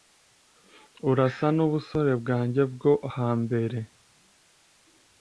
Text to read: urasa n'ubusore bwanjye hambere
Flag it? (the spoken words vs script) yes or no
yes